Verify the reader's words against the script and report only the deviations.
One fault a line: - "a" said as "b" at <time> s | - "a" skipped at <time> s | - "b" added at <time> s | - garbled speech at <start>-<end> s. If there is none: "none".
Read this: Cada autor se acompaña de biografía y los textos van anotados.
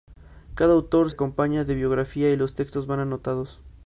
- "se" skipped at 1.1 s